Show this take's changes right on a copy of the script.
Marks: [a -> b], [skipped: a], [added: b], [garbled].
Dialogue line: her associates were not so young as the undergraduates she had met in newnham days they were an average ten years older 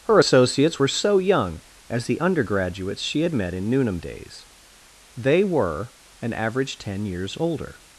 her associates were [skipped: not] so young as the undergraduates she had met in newnham days they were an average ten years older